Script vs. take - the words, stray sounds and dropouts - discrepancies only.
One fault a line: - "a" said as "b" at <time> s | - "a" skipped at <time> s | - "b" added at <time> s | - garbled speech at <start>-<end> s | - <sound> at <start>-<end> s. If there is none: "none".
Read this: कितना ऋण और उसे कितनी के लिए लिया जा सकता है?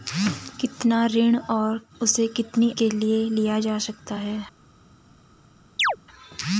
- chirp at 5.8-6.0 s